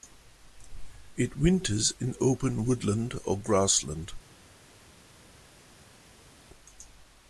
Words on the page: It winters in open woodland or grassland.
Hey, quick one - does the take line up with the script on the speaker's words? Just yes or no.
yes